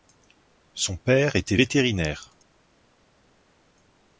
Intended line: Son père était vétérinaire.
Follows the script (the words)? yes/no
yes